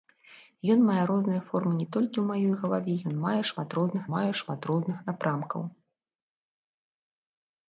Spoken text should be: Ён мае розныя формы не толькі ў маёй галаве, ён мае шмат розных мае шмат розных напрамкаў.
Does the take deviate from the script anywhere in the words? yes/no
no